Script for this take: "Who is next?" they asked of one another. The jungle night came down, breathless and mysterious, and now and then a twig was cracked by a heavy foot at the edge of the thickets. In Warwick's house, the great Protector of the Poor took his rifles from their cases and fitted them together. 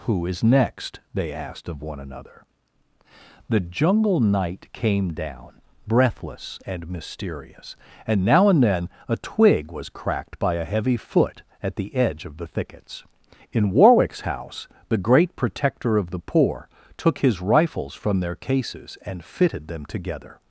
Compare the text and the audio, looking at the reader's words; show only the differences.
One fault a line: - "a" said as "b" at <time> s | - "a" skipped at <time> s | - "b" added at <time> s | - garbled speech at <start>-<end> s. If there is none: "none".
none